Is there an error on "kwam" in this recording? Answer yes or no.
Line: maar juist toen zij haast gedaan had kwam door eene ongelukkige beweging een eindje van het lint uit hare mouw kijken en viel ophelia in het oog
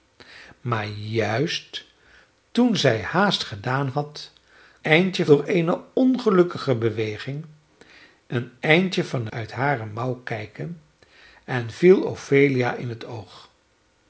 yes